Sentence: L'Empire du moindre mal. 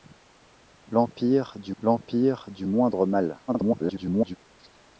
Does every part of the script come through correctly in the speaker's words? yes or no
no